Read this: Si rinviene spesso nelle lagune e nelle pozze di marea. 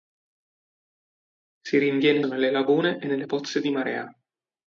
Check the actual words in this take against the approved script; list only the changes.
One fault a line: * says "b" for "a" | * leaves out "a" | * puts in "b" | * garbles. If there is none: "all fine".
* leaves out "spesso"